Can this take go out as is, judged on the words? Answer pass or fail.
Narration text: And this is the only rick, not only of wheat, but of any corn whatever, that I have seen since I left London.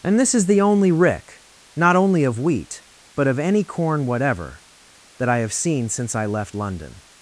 pass